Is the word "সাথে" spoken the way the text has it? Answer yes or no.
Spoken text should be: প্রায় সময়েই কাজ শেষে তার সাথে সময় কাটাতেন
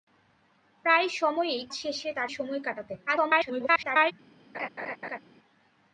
no